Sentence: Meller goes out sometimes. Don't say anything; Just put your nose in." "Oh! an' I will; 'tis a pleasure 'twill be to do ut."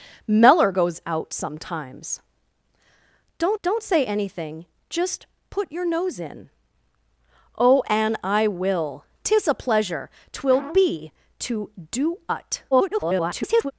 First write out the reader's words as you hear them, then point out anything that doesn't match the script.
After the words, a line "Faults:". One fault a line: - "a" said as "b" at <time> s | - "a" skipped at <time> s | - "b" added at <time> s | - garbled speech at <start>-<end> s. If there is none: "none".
Meller goes out sometimes. Don't don't say anything; Just put your nose in." "Oh! an' I will; 'tis a pleasure 'twill be to do ut." [garbled]
Faults:
- "don't" added at 3.6 s
- garbled speech at 12.7-13.7 s